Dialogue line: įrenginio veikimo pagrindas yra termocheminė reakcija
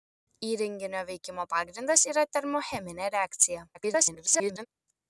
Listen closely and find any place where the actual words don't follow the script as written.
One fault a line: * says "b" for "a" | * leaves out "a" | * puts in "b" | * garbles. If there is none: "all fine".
* garbles